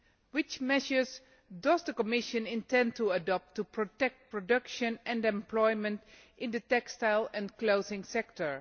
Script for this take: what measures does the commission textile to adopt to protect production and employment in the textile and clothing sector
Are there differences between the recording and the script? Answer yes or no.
yes